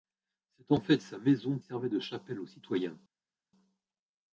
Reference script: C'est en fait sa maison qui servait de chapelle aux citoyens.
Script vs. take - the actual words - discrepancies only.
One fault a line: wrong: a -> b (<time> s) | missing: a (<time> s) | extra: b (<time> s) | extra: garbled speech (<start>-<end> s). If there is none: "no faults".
missing: qui (1.6 s)